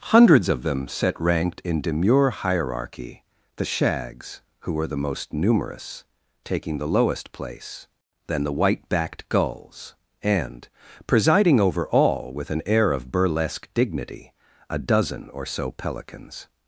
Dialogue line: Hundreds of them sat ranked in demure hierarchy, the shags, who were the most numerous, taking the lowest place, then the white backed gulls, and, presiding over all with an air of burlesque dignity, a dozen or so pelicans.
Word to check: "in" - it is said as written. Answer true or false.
true